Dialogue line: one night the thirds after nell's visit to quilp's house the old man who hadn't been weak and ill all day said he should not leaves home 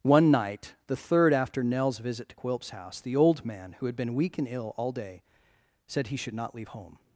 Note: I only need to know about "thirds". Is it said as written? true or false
false